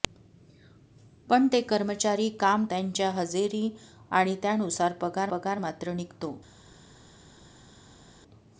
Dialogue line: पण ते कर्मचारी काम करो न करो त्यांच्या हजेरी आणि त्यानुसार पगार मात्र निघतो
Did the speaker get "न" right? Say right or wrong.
wrong